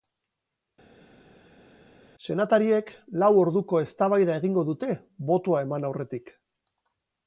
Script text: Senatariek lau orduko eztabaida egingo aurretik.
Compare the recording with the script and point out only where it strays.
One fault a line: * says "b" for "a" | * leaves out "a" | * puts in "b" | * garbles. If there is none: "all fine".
* puts in "dute botoa eman"